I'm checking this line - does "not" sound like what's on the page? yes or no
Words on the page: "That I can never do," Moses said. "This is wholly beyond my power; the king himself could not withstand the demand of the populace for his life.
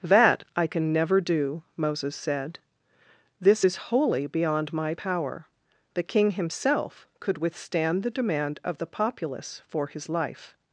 no